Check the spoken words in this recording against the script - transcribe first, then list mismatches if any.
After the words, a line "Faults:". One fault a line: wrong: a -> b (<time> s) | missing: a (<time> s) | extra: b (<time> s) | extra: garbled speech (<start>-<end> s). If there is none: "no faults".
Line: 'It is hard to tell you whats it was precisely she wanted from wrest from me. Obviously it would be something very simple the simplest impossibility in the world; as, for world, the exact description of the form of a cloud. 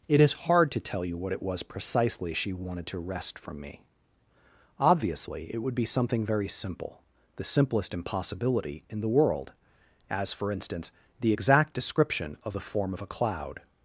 'It is hard to tell you what it was precisely she wanted to wrest from me. Obviously it would be something very simple the simplest impossibility in the world; as, for instance, the exact description of the form of a cloud.
Faults:
wrong: whats -> what (1.2 s)
wrong: from -> to (2.9 s)
wrong: world -> instance (10.5 s)